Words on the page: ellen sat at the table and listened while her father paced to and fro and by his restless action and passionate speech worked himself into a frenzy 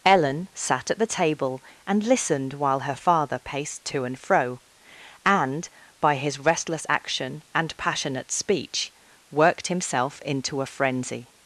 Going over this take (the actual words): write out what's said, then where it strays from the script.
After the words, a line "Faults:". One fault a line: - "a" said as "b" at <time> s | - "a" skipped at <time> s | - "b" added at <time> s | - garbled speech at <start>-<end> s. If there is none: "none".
ellen sat at the table and listened while her father paced to and fro and by his restless action and passionate speech worked himself into a frenzy
Faults:
none